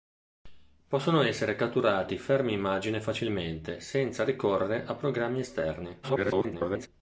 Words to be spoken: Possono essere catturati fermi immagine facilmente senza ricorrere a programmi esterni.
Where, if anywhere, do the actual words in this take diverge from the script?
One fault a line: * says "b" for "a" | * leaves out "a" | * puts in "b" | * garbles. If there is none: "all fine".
* garbles